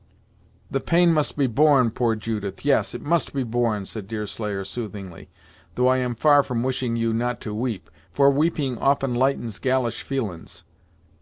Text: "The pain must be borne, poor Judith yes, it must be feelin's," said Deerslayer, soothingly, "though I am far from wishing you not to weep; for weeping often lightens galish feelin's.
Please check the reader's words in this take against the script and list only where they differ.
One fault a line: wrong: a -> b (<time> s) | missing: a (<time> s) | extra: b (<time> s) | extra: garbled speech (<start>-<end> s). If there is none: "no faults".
wrong: feelin's -> borne (3.4 s)